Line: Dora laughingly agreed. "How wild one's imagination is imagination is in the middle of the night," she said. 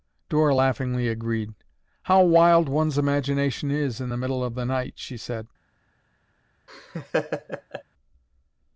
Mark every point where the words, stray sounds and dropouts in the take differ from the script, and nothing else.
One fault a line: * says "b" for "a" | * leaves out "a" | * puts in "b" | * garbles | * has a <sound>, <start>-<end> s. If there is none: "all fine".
* leaves out "imagination is"
* has a laugh, 6.7-7.8 s